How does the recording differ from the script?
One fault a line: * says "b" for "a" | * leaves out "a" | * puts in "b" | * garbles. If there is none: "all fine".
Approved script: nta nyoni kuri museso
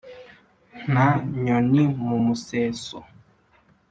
* says "mu" for "kuri"